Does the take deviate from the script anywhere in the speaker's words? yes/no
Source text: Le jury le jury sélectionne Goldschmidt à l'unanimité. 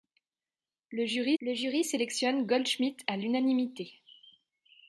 no